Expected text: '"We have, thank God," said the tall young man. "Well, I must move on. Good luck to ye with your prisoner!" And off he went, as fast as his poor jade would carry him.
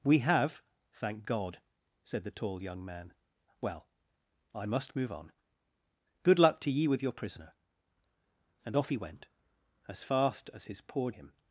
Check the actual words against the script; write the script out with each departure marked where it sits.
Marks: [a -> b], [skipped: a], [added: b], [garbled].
'"We have, thank God," said the tall young man. "Well, I must move on. Good luck to ye with your prisoner!" And off he went, as fast as his poor [skipped: jade would carry] him.